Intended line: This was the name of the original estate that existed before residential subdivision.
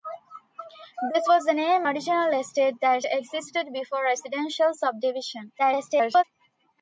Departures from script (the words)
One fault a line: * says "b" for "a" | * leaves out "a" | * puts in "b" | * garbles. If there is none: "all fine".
* leaves out "of the"
* garbles